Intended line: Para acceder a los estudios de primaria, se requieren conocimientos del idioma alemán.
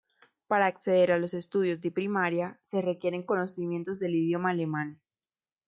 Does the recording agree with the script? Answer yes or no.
yes